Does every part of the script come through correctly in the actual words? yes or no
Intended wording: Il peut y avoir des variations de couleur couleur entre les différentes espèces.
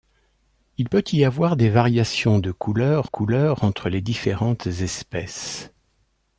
yes